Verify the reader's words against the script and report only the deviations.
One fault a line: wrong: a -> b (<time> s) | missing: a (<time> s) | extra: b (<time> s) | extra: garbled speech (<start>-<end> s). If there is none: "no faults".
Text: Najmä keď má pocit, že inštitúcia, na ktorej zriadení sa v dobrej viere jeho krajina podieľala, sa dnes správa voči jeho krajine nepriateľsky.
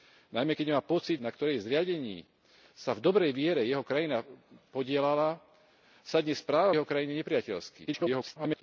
missing: že inštitúcia (1.2 s)
missing: voči (6.7 s)
extra: garbled speech (7.9-8.6 s)